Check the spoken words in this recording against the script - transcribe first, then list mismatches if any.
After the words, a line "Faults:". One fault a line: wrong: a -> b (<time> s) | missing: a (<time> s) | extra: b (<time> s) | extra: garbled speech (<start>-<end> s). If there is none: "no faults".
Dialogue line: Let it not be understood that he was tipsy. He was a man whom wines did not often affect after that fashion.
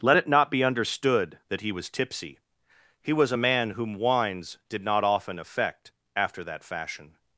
Let it not be understood that he was tipsy. He was a man whom wines did not often affect after that fashion.
Faults:
no faults